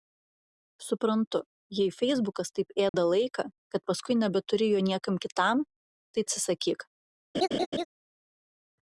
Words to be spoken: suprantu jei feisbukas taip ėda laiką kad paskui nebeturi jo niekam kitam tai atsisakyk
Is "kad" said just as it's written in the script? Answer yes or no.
yes